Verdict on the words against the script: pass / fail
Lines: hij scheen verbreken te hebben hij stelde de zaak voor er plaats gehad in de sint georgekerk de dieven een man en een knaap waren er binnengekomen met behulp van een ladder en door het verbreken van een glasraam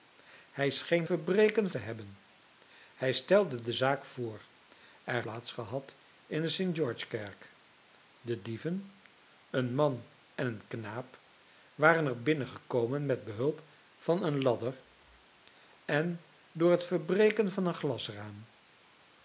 pass